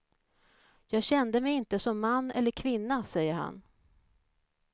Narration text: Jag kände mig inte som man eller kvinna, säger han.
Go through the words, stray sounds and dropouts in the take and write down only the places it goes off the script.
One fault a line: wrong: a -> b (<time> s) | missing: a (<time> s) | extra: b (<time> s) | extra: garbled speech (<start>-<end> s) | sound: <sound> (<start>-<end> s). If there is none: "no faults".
no faults